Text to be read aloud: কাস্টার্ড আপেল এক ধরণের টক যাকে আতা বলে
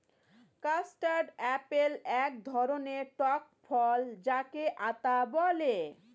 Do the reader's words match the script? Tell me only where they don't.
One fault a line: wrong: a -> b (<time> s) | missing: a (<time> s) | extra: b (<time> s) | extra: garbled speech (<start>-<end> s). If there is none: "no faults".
extra: ফল (3.6 s)